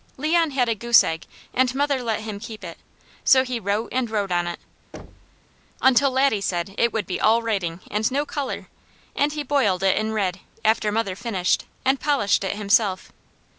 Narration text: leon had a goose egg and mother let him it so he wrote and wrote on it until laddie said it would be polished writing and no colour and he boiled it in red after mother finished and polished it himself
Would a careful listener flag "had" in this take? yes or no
no